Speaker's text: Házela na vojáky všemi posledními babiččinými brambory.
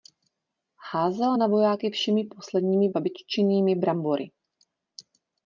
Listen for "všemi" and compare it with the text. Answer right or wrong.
right